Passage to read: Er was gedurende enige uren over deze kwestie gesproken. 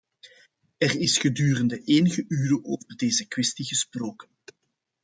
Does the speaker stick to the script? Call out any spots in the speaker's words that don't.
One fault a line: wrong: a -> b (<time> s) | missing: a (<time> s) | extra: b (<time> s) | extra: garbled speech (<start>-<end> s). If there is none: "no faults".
wrong: was -> is (1.0 s)